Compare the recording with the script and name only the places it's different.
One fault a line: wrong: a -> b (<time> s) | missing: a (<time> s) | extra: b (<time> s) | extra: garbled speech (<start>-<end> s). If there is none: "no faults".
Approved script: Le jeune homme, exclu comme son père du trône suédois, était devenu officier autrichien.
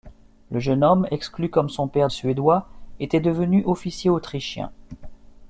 missing: du trône (2.1 s)